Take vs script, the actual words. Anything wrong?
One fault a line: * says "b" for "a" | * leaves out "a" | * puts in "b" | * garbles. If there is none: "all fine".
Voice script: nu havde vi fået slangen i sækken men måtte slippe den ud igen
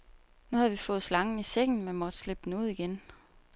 all fine